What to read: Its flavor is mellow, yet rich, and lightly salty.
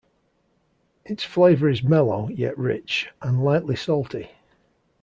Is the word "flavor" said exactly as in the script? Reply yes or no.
yes